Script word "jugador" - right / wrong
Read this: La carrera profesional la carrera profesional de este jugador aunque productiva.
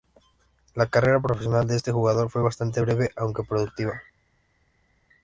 wrong